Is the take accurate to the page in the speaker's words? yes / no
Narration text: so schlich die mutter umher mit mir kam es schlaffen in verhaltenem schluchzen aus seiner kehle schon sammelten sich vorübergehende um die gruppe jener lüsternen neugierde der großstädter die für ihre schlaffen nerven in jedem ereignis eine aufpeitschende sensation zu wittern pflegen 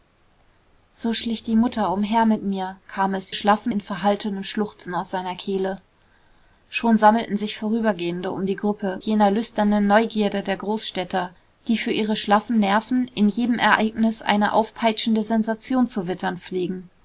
yes